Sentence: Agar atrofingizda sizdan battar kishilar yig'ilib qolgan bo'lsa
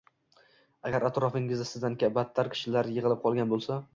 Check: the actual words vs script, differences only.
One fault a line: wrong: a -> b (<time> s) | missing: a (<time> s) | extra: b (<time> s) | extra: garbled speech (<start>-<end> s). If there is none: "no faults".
no faults